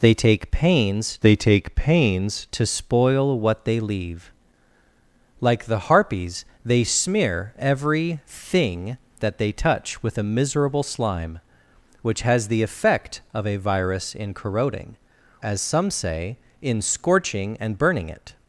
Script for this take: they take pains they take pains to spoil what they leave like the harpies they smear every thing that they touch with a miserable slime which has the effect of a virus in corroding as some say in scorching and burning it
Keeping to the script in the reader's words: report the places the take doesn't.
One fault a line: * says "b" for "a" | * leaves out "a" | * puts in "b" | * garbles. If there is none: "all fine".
all fine